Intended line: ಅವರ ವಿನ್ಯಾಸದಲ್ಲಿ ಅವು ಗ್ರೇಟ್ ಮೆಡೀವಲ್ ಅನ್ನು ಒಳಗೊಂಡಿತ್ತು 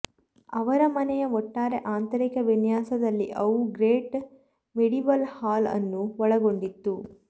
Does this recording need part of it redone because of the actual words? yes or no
yes